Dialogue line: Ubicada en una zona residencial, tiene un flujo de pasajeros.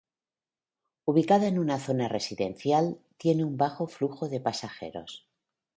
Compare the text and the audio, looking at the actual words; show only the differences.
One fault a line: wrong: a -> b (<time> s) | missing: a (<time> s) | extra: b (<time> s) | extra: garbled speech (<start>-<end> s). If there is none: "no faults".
extra: bajo (3.5 s)